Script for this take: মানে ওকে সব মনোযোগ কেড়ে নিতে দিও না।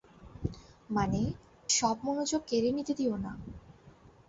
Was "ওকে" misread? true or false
true